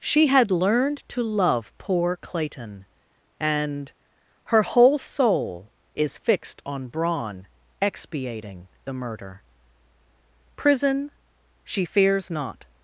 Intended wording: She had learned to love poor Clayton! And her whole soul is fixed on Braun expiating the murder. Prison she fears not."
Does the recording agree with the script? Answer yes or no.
yes